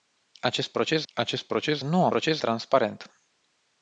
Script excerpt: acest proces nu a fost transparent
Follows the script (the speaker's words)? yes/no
no